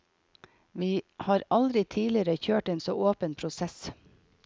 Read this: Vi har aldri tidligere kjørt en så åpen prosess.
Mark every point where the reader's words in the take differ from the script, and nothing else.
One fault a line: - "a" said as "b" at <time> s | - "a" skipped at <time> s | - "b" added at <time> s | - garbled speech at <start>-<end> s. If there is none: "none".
none